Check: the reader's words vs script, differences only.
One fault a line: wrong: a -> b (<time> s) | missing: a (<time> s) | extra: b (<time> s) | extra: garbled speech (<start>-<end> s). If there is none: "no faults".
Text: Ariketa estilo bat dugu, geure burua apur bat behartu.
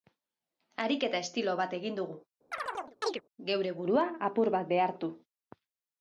extra: egin (1.8 s)